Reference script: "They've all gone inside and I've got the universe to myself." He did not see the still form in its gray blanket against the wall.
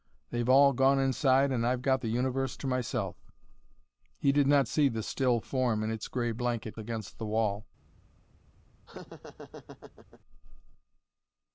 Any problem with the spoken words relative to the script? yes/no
no